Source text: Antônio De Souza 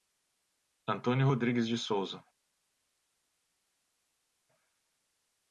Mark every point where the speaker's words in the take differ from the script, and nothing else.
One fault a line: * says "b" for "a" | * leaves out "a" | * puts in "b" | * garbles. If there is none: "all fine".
* puts in "Rodrigues"